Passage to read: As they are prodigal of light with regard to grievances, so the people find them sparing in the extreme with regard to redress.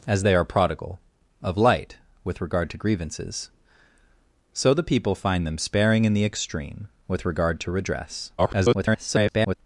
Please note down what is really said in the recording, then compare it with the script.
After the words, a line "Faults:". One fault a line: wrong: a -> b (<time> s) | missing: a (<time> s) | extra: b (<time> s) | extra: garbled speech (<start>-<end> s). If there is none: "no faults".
As they are prodigal of light with regard to grievances, so the people find them sparing in the extreme with regard to redress. [garbled]
Faults:
extra: garbled speech (8.4-9.6 s)